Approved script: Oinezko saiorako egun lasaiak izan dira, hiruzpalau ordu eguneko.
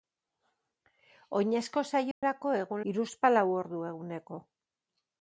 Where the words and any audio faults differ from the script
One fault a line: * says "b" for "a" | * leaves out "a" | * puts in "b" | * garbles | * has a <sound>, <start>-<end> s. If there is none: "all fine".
* has a dropout, 2.1-2.2 s
* leaves out "lasaiak izan dira"